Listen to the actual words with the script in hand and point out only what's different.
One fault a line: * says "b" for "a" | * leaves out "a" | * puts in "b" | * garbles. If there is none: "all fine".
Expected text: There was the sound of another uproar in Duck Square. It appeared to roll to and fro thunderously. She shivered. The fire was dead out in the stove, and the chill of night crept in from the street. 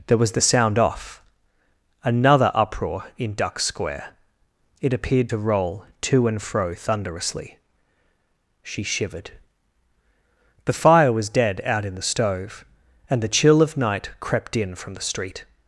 * says "off" for "of"